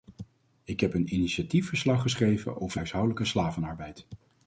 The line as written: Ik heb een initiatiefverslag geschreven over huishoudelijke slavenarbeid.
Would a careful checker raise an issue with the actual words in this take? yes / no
no